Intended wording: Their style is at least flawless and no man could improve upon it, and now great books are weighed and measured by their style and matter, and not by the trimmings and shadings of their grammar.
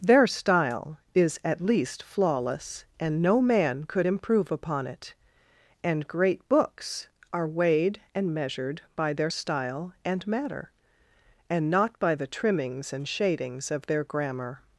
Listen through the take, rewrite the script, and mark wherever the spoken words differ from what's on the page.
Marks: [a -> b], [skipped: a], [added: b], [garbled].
Their style is at least flawless and no man could improve upon it, and [skipped: now] great books are weighed and measured by their style and matter, and not by the trimmings and shadings of their grammar.